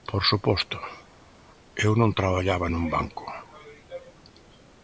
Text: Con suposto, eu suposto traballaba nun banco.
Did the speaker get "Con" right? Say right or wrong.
wrong